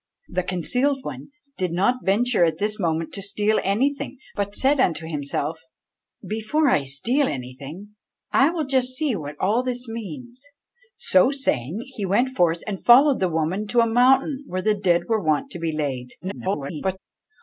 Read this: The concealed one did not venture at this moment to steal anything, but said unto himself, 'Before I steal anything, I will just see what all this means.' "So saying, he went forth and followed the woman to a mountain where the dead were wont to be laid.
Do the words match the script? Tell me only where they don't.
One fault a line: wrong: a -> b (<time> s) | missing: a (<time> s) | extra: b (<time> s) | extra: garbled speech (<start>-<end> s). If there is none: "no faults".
extra: garbled speech (16.2-17.0 s)